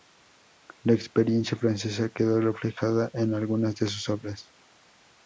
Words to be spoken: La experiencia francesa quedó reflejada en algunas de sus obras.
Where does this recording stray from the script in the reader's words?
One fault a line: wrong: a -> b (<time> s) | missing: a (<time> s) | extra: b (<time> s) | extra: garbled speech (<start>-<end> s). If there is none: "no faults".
no faults